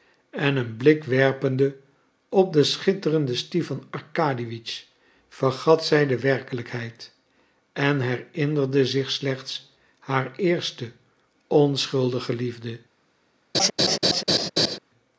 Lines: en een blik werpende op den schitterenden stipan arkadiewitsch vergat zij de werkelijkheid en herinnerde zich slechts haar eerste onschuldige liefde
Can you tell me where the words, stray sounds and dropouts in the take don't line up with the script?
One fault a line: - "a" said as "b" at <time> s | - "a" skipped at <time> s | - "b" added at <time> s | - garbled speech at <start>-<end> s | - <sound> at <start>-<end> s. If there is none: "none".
- laugh at 13.5-14.8 s